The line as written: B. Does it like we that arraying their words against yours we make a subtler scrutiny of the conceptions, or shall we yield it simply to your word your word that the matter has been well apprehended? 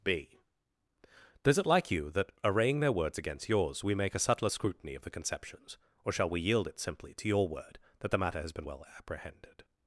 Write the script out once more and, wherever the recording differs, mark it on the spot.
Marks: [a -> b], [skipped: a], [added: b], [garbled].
B. Does it like [we -> you] that arraying their words against yours we make a subtler scrutiny of the conceptions, or shall we yield it simply to your word [skipped: your word] that the matter has been well apprehended?